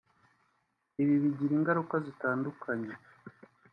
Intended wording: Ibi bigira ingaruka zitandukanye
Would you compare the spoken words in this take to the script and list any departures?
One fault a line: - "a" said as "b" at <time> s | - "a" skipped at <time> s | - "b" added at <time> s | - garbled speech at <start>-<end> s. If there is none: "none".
none